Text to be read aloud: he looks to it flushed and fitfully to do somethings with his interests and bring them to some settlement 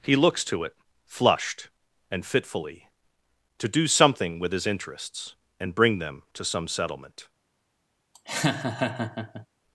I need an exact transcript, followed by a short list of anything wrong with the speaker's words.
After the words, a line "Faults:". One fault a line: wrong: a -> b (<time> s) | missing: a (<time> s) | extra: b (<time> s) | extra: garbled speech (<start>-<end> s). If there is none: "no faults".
he looks to it flushed and fitfully to do something with his interests and bring them to some settlement
Faults:
wrong: somethings -> something (3.9 s)